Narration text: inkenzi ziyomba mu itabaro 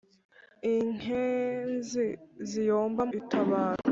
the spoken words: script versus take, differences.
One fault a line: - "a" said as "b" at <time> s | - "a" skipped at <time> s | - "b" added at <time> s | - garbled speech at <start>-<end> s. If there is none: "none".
- "mu" skipped at 3.0 s